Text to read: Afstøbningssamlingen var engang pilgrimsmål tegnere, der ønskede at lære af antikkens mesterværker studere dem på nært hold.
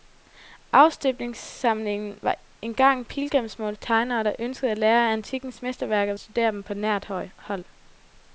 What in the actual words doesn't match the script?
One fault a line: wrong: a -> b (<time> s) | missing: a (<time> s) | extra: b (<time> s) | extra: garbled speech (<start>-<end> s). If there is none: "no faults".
no faults